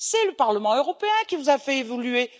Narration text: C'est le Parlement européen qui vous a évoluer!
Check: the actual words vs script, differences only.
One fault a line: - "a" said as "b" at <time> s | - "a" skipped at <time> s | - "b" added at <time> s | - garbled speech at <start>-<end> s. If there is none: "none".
- "fait" added at 1.6 s